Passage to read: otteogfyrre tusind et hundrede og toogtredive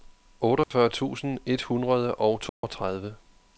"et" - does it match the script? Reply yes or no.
yes